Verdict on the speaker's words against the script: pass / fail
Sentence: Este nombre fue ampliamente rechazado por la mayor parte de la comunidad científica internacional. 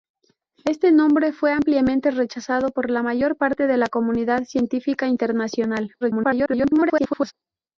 fail